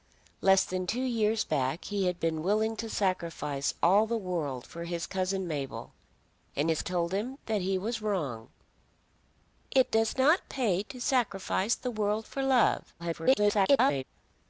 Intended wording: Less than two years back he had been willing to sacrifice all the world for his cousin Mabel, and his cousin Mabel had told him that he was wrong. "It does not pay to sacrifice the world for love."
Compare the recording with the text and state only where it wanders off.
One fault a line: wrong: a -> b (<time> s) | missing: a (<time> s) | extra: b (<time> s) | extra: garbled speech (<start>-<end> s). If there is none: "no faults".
missing: cousin Mabel had (6.8 s)
extra: garbled speech (13.0-14.0 s)